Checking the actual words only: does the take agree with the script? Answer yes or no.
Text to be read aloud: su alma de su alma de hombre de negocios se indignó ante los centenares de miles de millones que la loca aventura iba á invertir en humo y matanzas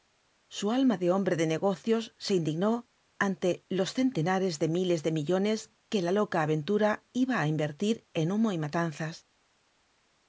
no